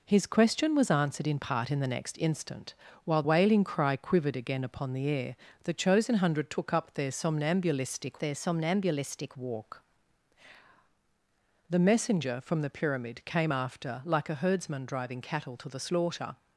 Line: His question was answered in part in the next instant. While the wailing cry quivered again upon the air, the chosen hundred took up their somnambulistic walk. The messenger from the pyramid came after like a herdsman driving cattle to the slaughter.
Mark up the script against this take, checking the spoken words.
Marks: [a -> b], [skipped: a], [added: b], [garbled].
His question was answered in part in the next instant. While [skipped: the] wailing cry quivered again upon the air, the chosen hundred took up their somnambulistic [added: their somnambulistic] walk. The messenger from the pyramid came after like a herdsman driving cattle to the slaughter.